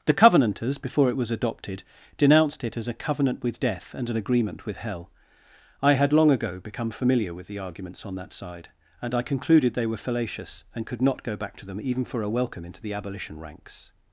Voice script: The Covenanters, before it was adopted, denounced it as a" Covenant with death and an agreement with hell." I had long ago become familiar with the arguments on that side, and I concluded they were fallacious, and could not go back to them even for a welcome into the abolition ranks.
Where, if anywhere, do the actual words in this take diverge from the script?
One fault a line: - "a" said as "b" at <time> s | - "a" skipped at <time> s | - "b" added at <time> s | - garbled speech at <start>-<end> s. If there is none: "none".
none